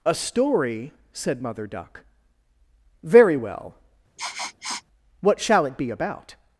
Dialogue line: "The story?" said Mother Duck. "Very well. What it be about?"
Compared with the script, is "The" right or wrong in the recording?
wrong